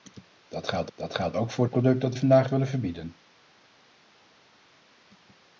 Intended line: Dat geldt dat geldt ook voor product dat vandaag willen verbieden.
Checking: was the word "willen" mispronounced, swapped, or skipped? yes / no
no